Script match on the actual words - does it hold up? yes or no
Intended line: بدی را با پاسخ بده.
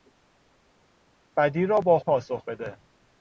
yes